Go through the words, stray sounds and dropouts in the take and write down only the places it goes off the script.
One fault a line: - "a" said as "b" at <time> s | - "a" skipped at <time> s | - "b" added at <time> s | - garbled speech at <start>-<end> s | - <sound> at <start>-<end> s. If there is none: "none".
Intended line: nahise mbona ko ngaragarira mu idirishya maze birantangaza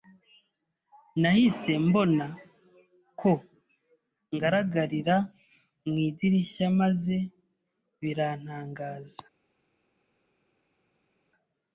none